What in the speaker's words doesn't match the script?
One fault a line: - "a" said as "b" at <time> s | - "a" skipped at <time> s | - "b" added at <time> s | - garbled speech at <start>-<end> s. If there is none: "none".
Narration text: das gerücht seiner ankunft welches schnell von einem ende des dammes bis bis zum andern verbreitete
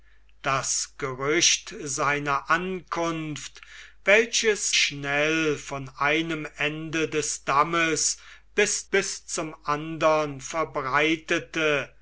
none